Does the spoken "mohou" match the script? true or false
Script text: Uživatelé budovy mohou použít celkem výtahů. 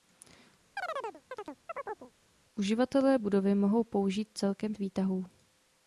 true